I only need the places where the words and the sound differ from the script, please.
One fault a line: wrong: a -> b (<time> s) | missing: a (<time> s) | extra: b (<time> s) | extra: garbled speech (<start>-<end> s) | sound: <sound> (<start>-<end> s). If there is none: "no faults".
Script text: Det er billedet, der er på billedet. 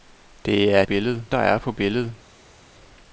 no faults